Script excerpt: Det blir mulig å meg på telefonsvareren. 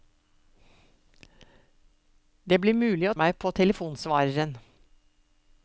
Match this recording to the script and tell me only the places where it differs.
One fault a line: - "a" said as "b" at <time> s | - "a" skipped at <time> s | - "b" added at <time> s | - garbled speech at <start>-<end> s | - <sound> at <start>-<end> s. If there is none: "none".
none